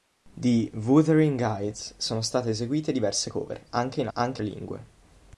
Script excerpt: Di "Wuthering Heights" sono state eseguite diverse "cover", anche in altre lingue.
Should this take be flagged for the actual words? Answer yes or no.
yes